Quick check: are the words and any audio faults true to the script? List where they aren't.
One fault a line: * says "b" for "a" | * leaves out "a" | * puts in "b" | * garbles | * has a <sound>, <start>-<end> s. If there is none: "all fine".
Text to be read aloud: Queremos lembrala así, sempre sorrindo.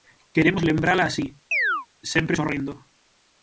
* has a chirp, 1.5-1.9 s